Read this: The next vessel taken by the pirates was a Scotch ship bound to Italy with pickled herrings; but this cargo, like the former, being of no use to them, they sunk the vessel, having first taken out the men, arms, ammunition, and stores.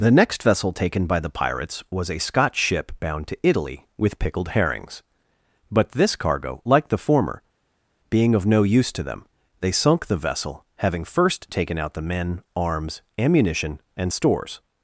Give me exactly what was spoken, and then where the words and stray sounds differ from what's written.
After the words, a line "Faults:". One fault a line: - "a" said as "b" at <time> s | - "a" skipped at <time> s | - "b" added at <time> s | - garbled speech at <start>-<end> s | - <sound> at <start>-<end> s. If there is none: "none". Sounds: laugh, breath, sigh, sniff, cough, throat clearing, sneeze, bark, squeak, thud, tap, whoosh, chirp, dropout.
The next vessel taken by the pirates was a Scotch ship bound to Italy with pickled herrings; but this cargo, like the former, being of no use to them, they sunk the vessel, having first taken out the men, arms, ammunition, and stores.
Faults:
none